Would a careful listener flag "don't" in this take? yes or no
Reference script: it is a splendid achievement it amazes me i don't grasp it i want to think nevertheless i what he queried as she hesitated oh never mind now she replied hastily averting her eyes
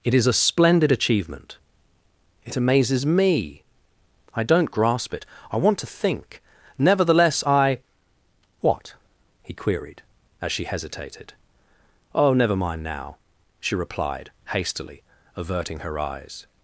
no